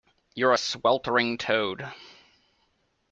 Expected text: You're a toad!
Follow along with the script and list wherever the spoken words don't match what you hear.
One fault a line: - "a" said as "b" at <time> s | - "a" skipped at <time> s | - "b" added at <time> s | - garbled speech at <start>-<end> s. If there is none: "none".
- "sweltering" added at 0.6 s